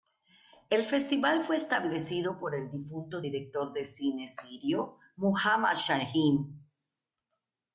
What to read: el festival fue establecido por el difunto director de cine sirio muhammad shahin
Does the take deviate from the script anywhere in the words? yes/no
no